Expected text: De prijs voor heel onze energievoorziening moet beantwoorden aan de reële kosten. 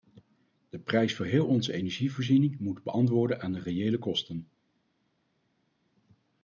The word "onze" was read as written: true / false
true